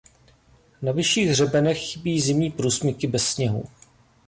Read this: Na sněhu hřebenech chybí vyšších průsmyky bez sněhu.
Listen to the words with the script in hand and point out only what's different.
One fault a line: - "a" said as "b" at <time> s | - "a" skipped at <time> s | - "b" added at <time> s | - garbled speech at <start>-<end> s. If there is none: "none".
- "sněhu" said as "vyšších" at 0.9 s
- "vyšších" said as "zimní" at 2.2 s